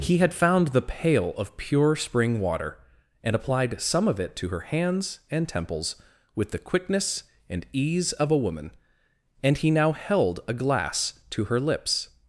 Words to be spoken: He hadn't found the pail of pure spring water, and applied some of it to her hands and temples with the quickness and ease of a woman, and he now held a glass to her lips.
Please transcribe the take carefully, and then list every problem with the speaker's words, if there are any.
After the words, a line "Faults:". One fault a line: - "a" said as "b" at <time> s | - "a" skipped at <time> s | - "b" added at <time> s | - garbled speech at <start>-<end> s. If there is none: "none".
He had found the pail of pure spring water, and applied some of it to her hands and temples with the quickness and ease of a woman, and he now held a glass to her lips.
Faults:
- "hadn't" said as "had" at 0.2 s